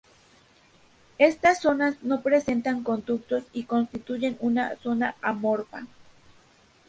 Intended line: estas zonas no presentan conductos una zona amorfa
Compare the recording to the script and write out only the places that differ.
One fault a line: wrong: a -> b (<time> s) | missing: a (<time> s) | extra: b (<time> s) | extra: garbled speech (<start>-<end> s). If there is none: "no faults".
extra: y constituyen (3.5 s)